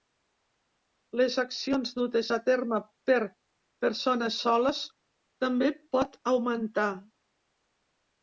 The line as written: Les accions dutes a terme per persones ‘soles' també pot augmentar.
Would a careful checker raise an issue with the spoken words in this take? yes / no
no